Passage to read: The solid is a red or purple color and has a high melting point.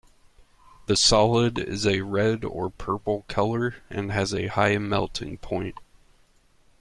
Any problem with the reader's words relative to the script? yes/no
no